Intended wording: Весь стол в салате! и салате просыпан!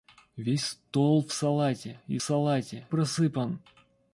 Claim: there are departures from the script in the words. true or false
false